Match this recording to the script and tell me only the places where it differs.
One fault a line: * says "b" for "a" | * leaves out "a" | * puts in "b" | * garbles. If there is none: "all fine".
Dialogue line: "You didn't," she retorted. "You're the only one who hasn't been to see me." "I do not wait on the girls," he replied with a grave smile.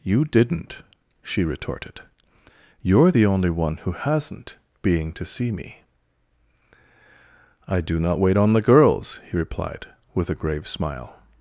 * says "being" for "been"